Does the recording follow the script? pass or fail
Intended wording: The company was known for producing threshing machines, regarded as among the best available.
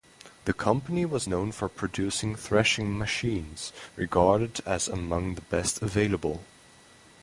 pass